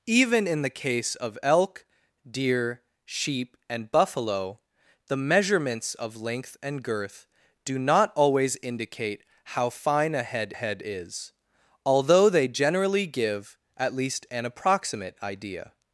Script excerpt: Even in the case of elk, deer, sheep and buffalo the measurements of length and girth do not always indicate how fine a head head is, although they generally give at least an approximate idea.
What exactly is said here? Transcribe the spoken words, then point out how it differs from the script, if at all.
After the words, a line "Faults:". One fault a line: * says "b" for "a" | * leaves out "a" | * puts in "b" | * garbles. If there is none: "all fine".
Even in the case of elk, deer, sheep and buffalo the measurements of length and girth do not always indicate how fine a head head is, although they generally give at least an approximate idea.
Faults:
all fine